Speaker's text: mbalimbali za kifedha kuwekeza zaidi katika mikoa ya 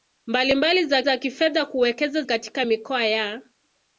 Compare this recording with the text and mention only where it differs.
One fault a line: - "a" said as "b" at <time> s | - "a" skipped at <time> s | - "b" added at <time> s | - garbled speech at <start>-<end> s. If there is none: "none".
- "za" added at 1.0 s
- "zaidi" skipped at 2.2 s